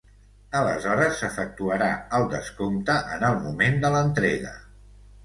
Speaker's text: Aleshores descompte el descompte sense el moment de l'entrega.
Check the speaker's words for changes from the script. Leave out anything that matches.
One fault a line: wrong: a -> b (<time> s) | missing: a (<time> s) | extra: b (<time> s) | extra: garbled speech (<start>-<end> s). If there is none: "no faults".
wrong: descompte -> s'efectuarà (1.2 s)
wrong: sense -> en (3.2 s)